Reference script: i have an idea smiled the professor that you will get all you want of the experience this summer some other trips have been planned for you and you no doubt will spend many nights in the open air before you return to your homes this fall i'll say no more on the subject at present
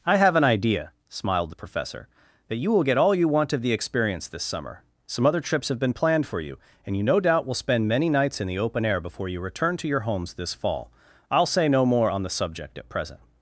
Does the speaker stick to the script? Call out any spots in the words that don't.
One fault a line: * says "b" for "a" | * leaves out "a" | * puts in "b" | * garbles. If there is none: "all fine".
all fine